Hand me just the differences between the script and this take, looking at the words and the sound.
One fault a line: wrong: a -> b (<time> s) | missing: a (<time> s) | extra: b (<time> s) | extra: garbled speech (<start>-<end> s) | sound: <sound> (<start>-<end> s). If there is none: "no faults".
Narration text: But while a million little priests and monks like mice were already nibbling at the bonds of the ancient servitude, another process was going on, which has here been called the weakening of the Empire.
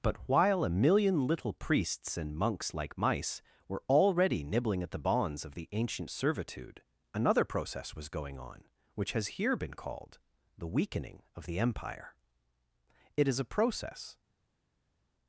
extra: It is a process (13.1 s)